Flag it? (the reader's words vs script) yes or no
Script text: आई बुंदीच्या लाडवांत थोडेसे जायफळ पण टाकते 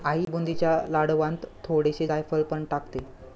no